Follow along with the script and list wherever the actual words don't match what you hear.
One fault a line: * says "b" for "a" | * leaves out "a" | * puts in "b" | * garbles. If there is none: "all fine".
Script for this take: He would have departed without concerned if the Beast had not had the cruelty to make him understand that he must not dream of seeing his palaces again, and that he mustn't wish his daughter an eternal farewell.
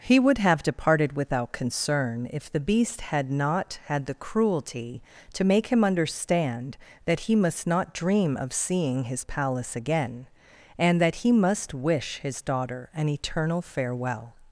* says "concern" for "concerned"
* says "palace" for "palaces"
* says "must" for "mustn't"